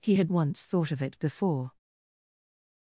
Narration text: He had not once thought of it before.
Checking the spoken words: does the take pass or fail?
fail